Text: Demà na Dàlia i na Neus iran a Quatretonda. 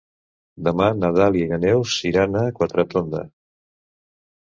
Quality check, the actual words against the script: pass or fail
pass